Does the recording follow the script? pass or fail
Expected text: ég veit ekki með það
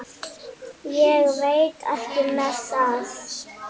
pass